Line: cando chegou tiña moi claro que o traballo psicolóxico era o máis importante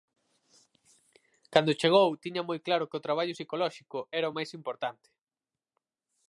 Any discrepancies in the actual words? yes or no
no